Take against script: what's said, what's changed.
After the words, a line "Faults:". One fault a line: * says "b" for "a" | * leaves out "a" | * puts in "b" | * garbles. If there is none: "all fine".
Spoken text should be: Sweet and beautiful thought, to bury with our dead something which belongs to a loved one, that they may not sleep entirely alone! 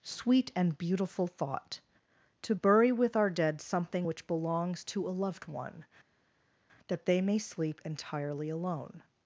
Sweet and beautiful thought, to bury with our dead something which belongs to a loved one, that they may sleep entirely alone!
Faults:
* leaves out "not"